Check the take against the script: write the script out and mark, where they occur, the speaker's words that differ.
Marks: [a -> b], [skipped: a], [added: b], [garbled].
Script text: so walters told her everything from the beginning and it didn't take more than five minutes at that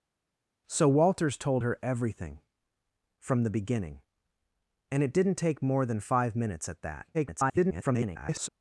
so walters told her everything from the beginning and it didn't take more than five minutes at that [garbled]